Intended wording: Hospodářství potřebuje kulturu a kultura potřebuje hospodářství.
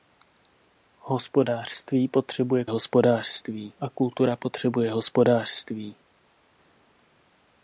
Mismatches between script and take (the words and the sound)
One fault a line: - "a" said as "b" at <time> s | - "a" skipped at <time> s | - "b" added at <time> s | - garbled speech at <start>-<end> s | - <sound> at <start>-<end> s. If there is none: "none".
- "kulturu" said as "hospodářství" at 2.7 s